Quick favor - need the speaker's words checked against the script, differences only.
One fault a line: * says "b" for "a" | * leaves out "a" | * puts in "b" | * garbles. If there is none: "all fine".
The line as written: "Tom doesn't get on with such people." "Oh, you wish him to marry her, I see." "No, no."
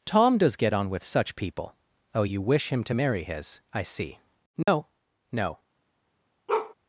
* says "does" for "doesn't"
* says "his" for "her"